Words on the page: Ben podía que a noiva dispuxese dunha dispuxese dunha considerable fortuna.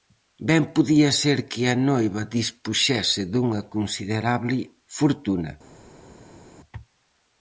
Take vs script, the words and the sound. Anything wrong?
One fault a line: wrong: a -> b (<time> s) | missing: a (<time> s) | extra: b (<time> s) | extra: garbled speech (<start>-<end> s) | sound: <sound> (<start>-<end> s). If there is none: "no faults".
extra: ser (1.2 s)
missing: dispuxese dunha (3.6 s)